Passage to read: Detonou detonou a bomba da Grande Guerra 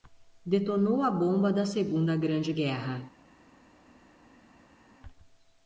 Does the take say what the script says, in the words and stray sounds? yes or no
no